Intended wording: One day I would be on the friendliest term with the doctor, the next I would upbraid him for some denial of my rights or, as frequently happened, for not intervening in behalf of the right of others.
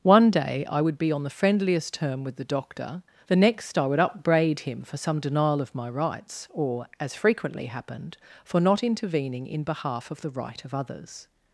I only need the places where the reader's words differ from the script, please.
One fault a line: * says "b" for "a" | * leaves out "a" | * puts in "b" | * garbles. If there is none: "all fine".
all fine